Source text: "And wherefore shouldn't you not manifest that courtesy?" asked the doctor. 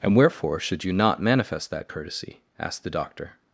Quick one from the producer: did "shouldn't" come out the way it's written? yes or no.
no